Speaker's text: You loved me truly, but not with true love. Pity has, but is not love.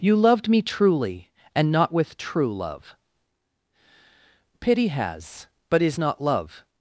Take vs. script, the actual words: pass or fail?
fail